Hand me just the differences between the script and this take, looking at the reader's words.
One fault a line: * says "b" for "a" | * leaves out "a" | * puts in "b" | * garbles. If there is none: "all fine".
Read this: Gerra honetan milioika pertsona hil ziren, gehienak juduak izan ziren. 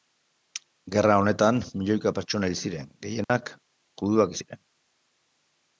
* leaves out "izan"